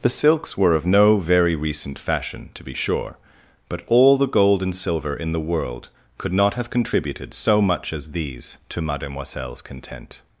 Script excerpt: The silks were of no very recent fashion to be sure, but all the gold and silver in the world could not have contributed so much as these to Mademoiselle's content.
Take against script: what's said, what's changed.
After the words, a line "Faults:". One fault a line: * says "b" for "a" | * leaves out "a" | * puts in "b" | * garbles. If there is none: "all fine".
The silks were of no very recent fashion to be sure, but all the gold and silver in the world could not have contributed so much as these to Mademoiselle's content.
Faults:
all fine